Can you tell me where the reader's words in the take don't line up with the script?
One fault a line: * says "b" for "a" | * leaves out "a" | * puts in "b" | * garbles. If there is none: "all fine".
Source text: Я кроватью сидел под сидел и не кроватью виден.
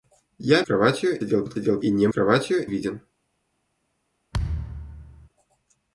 all fine